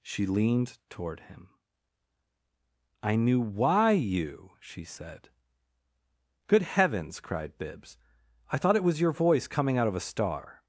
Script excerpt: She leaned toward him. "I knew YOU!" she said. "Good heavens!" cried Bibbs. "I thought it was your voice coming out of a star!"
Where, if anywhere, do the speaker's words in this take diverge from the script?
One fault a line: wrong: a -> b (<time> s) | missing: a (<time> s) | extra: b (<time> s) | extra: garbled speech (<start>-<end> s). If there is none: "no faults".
extra: why (3.4 s)